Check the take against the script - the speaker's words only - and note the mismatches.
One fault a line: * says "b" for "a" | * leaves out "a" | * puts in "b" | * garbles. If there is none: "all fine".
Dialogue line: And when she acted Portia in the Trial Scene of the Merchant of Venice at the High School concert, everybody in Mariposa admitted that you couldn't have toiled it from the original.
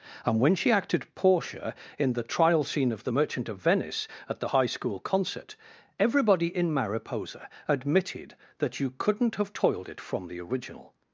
all fine